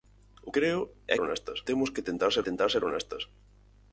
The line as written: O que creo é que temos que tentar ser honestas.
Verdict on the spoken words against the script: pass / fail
fail